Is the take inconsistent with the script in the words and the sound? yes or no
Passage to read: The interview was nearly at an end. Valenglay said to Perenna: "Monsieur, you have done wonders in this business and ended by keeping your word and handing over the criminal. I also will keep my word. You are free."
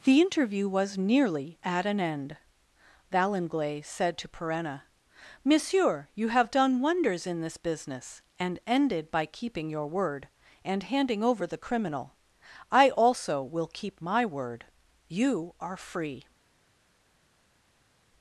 no